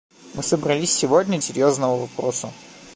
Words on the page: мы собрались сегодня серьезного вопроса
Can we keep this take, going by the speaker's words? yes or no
yes